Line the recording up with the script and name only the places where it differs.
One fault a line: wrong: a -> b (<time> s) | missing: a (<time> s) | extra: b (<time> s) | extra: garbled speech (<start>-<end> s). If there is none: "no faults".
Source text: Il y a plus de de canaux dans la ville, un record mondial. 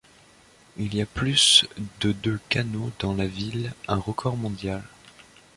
no faults